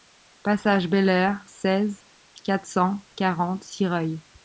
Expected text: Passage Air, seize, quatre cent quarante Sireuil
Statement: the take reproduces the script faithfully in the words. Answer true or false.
false